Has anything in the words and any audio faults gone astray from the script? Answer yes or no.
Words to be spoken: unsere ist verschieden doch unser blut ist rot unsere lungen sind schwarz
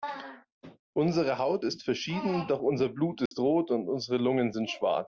yes